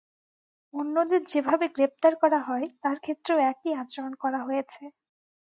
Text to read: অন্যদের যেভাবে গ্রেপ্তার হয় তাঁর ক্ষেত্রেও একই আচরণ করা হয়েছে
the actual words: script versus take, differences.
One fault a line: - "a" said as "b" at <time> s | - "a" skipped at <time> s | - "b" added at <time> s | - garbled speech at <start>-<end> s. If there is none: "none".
- "করা" added at 2.2 s